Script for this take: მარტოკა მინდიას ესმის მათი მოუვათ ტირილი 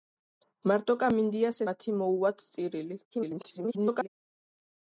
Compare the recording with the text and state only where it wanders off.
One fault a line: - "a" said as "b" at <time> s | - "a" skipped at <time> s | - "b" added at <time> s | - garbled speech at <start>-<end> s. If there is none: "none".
- "ესმის" skipped at 1.6 s
- garbled speech at 3.1-4.1 s